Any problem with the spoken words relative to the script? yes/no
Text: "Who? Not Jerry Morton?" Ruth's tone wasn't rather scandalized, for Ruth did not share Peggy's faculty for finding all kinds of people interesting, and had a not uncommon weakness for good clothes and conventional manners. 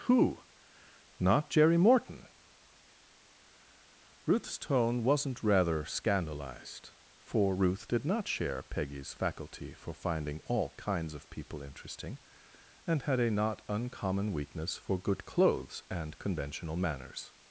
no